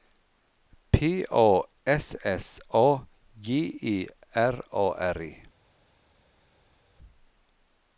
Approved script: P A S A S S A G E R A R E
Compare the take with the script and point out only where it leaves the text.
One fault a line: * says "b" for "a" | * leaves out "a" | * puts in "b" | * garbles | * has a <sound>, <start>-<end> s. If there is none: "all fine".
* leaves out "A S"